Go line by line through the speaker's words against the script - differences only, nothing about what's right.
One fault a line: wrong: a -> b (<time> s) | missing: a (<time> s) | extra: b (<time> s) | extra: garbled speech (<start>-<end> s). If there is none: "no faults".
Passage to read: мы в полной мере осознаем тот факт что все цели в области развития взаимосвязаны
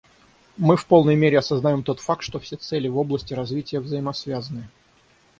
no faults